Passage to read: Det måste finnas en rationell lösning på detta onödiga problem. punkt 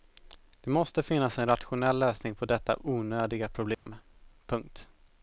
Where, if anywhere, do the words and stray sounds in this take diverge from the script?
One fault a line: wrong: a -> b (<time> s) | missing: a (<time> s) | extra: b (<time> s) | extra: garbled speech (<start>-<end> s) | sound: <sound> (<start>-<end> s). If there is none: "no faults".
sound: dropout (3.7-3.9 s)